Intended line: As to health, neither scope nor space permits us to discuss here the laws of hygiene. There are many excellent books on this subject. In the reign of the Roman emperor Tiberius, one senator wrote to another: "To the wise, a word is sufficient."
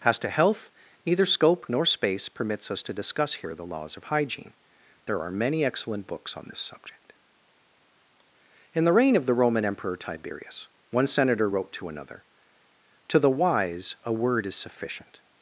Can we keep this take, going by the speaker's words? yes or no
yes